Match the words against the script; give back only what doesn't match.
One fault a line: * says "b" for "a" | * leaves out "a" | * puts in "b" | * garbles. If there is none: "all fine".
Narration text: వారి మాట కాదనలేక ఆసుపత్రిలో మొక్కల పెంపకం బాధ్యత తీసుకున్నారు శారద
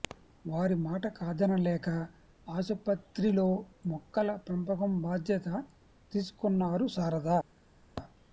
all fine